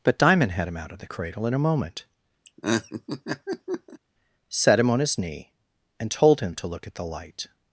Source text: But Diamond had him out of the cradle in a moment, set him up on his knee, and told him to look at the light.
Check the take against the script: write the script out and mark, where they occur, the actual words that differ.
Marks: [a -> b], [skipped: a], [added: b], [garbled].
But Diamond had him out of the cradle in a moment, set him [skipped: up] on his knee, and told him to look at the light.